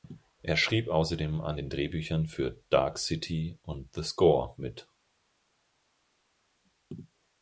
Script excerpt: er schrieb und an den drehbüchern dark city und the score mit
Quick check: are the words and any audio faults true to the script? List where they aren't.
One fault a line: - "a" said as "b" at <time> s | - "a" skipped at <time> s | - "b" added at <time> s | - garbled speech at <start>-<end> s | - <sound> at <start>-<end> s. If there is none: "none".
- "und" said as "außerdem" at 0.9 s
- "für" added at 2.3 s